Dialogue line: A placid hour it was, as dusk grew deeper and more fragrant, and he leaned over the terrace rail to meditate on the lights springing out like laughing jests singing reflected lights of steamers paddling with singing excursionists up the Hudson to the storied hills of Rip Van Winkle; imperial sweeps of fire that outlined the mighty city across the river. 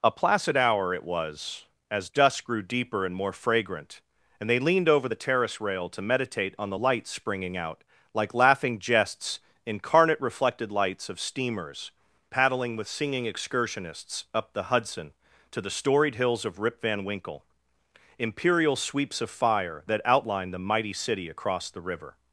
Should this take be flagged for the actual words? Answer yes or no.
yes